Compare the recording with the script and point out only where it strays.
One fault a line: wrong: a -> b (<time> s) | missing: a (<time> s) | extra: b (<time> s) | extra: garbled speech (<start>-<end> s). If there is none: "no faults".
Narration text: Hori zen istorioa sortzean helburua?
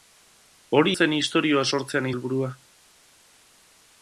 no faults